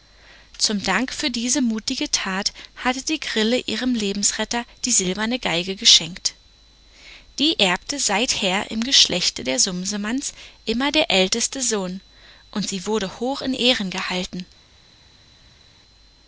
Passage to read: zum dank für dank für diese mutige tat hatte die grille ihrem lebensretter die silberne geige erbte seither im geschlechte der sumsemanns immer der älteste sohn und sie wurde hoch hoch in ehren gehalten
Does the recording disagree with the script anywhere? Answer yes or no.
yes